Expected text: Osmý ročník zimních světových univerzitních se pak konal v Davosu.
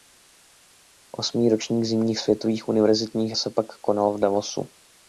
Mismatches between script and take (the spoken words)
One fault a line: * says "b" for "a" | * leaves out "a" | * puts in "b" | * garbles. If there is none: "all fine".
all fine